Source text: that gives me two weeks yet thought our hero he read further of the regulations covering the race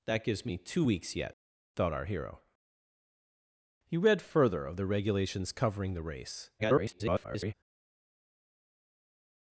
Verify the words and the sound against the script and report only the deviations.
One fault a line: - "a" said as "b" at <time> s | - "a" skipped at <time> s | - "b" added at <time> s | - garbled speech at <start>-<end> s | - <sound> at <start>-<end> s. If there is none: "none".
- garbled speech at 6.6-7.5 s